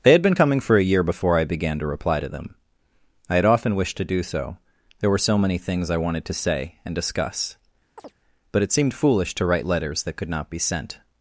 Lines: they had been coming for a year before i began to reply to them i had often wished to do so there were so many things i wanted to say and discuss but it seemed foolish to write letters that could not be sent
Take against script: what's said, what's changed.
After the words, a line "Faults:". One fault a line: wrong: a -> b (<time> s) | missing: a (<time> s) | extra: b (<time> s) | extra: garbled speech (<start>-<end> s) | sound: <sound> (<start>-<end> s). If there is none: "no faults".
they had been coming for a year before i began to reply to them i had often wished to do so there were so many things i wanted to say and discuss but it seemed foolish to write letters that could not be sent
Faults:
sound: chirp (8.0-8.1 s)